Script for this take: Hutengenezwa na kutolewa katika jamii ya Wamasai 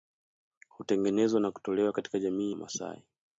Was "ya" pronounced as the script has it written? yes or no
no